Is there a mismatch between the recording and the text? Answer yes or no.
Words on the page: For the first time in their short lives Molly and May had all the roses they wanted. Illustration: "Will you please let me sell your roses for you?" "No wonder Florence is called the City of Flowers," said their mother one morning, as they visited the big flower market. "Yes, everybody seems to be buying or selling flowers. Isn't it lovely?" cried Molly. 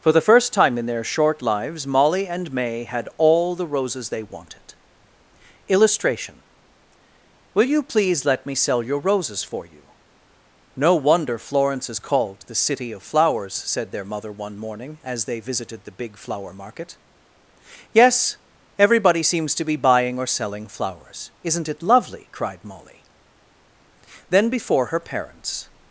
yes